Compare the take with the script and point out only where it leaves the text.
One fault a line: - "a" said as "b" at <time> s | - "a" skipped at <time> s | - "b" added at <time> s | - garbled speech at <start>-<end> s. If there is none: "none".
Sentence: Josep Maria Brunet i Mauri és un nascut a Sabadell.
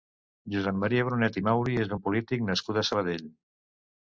- "polític" added at 2.1 s